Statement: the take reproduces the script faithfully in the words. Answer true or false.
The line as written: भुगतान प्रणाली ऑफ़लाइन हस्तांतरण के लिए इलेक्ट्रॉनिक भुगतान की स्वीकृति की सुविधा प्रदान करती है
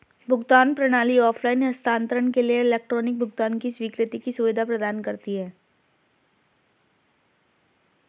true